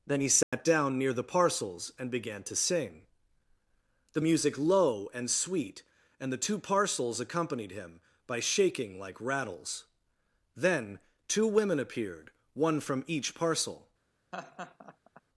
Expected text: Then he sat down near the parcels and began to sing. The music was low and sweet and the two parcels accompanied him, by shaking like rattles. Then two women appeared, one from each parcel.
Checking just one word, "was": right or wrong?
wrong